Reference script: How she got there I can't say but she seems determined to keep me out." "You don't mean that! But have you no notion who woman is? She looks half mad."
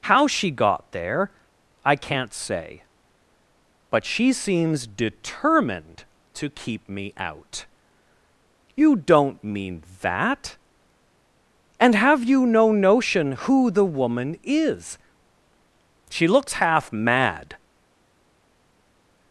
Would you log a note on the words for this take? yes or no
yes